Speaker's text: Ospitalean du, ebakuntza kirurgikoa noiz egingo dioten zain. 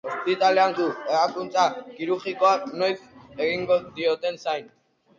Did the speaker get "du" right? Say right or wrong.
right